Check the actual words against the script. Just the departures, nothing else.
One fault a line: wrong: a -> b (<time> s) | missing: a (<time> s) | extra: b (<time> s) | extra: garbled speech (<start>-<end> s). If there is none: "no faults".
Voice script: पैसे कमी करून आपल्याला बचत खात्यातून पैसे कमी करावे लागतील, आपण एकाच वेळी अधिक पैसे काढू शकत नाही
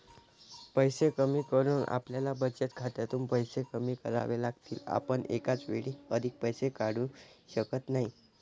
no faults